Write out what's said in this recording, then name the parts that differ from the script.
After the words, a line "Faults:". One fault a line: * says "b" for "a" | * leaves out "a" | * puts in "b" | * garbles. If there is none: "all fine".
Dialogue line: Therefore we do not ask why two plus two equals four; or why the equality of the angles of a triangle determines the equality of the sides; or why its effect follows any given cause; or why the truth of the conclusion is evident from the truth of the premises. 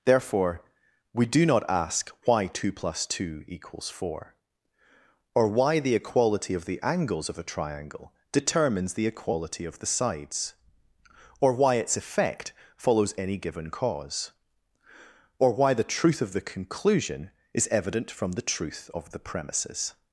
Therefore we do not ask why two plus two equals four; or why the equality of the angles of a triangle determines the equality of the sides; or why its effect follows any given cause; or why the truth of the conclusion is evident from the truth of the premises.
Faults:
all fine